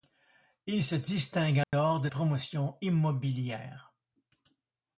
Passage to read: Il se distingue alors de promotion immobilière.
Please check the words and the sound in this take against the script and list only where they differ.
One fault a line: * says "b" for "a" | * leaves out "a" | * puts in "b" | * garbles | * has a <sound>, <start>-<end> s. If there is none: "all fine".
* has a dropout, 1.6-1.7 s